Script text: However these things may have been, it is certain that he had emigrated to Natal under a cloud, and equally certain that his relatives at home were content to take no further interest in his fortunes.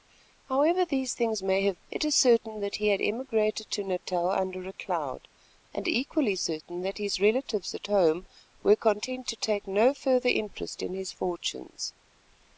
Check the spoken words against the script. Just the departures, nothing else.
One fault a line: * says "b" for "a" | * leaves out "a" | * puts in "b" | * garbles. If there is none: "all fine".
* leaves out "been"